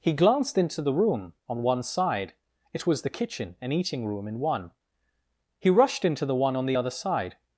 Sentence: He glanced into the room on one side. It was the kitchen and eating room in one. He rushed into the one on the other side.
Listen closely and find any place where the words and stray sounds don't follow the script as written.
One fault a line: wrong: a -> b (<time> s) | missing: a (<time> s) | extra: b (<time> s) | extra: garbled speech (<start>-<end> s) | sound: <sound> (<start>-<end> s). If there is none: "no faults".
no faults